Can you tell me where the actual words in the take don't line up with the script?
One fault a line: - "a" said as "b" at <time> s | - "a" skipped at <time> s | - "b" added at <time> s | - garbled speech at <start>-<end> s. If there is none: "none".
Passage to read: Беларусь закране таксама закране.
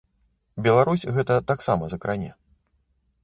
- "закране" said as "гэта" at 1.2 s